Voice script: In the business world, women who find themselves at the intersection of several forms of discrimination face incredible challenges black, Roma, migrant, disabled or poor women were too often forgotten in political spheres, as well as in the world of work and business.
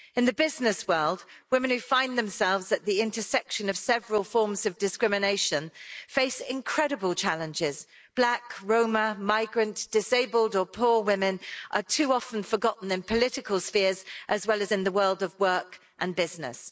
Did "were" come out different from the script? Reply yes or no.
yes